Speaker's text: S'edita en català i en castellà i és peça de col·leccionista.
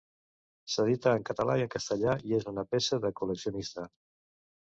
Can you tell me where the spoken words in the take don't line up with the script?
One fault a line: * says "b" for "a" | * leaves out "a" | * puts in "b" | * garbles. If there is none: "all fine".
* puts in "una"